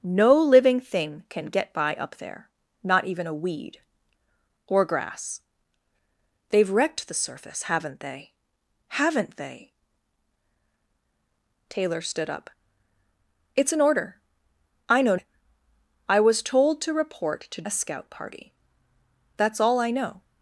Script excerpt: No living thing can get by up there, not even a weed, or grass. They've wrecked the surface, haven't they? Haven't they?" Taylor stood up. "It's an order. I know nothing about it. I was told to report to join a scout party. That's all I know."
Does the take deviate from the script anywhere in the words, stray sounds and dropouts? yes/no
yes